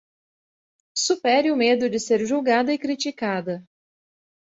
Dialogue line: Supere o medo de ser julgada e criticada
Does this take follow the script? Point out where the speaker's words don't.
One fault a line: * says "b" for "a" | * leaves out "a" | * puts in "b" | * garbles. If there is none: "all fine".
all fine